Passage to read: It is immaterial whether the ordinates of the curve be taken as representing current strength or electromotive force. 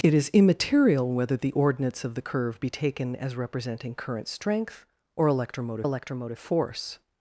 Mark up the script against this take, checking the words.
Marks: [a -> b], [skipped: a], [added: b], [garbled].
It is immaterial whether the ordinates of the curve be taken as representing current strength or electromotive [added: electromotive] force.